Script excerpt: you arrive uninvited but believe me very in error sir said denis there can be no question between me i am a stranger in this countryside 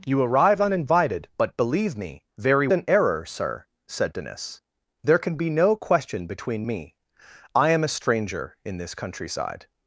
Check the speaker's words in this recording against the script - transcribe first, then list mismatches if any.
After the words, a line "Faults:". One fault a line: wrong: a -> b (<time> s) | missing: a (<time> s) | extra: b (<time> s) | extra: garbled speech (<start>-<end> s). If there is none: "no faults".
you arrive uninvited but believe me very in error sir said denis there can be no question between me i am a stranger in this countryside
Faults:
no faults